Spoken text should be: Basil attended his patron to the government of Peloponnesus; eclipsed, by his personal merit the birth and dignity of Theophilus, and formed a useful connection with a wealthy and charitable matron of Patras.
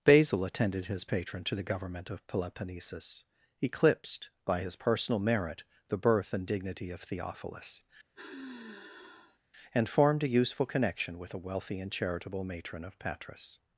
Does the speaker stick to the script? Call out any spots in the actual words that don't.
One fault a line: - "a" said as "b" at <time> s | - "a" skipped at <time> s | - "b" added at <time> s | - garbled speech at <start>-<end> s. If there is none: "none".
none